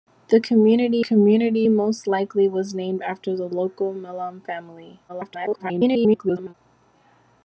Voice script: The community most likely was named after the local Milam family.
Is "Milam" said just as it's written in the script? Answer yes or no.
yes